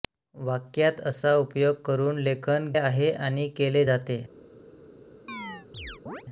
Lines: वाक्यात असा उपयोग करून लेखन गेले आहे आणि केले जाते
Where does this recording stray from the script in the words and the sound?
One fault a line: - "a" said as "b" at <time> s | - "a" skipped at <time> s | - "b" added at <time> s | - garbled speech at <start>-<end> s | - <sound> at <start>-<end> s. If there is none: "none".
- "गेले" skipped at 2.7 s
- chirp at 5.3-6.2 s